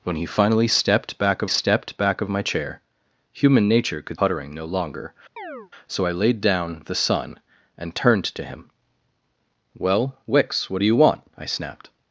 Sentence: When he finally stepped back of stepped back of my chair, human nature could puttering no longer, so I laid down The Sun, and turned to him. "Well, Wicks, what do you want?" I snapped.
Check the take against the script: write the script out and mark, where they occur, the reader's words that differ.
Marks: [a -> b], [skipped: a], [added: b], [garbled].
When he finally stepped back of stepped back of my chair, human nature could puttering no longer, so I laid down The Sun, and turned to him. "Well, Wicks, what do you want?" I snapped.